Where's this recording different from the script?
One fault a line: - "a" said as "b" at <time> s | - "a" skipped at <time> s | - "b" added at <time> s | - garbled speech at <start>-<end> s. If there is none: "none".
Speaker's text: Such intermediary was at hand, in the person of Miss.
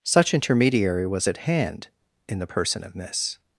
none